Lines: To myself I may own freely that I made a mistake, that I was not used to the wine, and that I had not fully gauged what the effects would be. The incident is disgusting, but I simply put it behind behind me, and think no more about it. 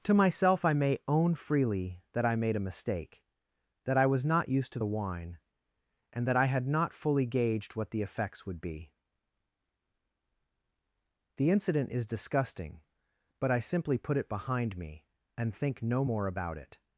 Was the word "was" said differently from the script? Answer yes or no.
no